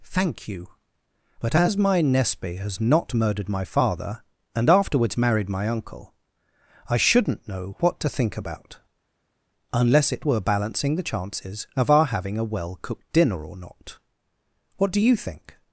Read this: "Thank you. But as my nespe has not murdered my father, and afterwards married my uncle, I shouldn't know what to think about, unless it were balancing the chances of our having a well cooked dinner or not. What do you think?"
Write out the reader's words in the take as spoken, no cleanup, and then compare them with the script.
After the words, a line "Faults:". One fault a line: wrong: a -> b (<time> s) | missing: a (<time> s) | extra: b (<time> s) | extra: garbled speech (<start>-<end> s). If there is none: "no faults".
"Thank you. But as my nespe has not murdered my father, and afterwards married my uncle, I shouldn't know what to think about, unless it were balancing the chances of our having a well cooked dinner or not. What do you think?"
Faults:
no faults